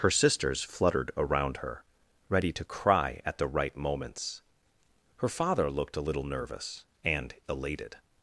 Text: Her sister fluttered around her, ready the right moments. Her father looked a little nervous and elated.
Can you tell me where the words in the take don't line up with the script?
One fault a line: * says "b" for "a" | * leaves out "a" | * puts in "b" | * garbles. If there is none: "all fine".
* says "sisters" for "sister"
* puts in "to cry at"